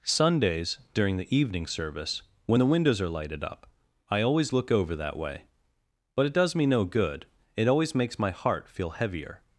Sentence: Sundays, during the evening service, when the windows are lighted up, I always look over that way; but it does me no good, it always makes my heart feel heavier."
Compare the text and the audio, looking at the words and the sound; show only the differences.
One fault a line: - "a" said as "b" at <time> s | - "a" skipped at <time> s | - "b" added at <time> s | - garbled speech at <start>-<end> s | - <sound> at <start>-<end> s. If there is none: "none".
none